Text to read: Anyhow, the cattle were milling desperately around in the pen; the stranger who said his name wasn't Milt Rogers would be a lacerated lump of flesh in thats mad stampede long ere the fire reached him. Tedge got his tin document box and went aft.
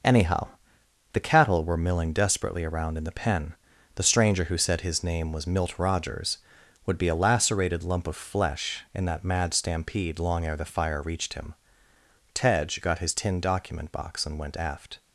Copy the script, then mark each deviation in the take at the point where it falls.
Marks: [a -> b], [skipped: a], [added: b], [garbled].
Anyhow, the cattle were milling desperately around in the pen; the stranger who said his name [wasn't -> was] Milt Rogers would be a lacerated lump of flesh in [thats -> that] mad stampede long ere the fire reached him. Tedge got his tin document box and went aft.